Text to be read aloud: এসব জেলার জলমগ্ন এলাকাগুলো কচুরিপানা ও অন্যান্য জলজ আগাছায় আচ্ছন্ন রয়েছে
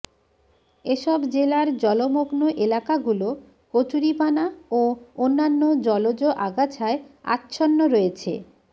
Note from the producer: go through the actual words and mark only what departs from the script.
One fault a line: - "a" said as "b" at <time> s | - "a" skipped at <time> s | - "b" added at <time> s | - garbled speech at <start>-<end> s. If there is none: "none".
none